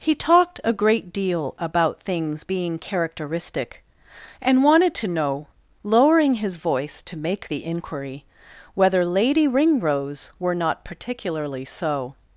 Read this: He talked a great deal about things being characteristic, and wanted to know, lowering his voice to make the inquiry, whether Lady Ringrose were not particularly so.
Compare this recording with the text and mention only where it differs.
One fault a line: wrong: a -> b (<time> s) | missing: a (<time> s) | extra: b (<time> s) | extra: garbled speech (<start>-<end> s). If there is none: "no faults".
no faults